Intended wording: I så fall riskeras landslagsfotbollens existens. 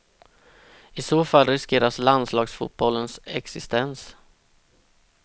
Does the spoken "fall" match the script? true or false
true